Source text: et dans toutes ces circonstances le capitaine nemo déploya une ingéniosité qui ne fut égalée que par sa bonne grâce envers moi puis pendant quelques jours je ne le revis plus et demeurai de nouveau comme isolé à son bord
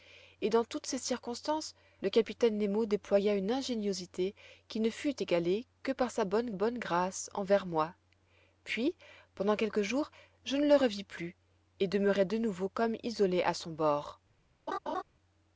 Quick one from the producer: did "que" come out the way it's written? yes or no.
yes